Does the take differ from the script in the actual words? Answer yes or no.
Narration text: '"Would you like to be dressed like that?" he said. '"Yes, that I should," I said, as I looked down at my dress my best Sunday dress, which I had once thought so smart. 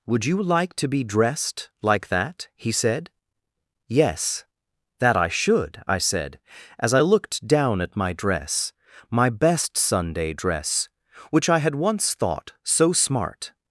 no